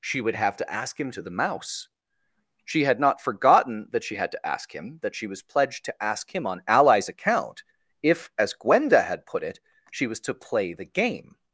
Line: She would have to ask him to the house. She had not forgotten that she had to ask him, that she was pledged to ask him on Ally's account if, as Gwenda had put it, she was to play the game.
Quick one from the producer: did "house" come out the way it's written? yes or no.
no